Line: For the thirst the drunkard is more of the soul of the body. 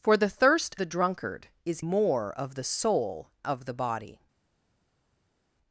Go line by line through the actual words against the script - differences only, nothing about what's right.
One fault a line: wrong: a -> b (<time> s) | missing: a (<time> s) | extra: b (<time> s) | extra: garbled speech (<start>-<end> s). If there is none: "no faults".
no faults